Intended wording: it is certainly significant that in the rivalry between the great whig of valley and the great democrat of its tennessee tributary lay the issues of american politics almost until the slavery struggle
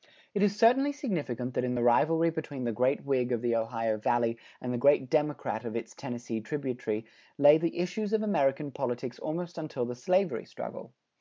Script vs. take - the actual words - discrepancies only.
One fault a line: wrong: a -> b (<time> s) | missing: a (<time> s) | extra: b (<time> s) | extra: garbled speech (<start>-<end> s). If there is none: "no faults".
extra: the ohio (3.4 s)